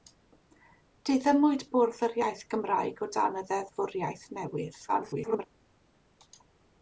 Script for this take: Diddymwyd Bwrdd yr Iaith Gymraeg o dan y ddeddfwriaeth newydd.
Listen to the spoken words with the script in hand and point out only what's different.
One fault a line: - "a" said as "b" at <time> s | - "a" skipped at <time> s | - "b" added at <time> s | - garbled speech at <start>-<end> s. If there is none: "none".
- garbled speech at 4.9-5.4 s